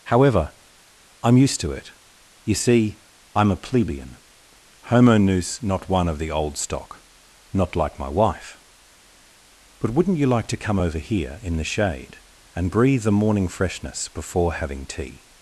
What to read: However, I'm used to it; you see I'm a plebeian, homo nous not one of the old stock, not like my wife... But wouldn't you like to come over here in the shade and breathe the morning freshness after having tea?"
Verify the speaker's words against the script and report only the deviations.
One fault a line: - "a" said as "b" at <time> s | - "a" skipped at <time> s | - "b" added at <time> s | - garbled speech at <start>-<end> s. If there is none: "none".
- "after" said as "before" at 14.1 s